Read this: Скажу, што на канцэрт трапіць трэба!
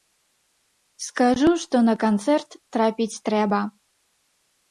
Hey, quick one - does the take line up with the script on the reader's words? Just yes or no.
yes